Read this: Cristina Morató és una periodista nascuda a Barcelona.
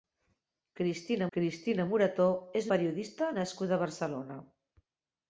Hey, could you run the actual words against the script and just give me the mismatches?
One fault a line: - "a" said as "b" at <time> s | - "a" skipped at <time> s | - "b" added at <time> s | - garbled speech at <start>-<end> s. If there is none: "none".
- "cristina" added at 1.4 s
- "una" skipped at 2.7 s